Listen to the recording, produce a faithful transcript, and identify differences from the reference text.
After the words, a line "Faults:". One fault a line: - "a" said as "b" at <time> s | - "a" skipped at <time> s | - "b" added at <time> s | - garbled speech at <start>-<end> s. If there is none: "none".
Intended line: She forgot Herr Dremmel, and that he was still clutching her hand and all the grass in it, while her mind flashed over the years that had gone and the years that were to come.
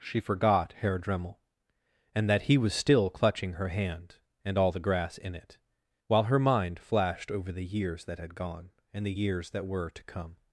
She forgot Herr Dremmel, and that he was still clutching her hand and all the grass in it, while her mind flashed over the years that had gone and the years that were to come.
Faults:
none